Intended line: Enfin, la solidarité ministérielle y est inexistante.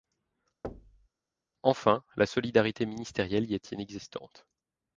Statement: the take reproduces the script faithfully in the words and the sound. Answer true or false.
false